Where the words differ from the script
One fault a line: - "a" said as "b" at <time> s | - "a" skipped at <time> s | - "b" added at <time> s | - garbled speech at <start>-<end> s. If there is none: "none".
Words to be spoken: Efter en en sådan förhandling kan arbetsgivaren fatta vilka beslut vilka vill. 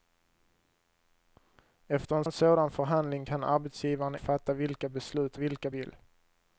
none